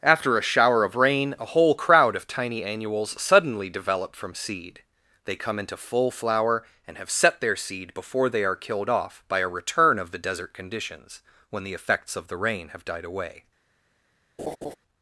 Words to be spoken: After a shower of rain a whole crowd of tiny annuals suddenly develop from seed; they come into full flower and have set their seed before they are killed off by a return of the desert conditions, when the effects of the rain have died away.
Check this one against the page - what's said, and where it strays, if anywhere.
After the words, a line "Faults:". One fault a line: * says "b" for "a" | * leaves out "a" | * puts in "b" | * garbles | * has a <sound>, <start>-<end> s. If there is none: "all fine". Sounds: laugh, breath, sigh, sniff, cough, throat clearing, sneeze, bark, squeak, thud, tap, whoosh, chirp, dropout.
After a shower of rain a whole crowd of tiny annuals suddenly develop from seed; they come into full flower and have set their seed before they are killed off by a return of the desert conditions, when the effects of the rain have died away.
Faults:
* has a laugh, 14.4-14.8 s